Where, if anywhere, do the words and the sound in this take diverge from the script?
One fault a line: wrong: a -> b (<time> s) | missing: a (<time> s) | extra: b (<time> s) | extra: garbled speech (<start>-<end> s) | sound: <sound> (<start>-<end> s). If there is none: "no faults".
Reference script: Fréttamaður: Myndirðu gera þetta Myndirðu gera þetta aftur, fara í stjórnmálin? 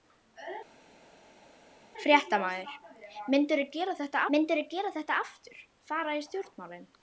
no faults